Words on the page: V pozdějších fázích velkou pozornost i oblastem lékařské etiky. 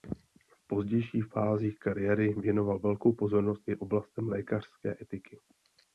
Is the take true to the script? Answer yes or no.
no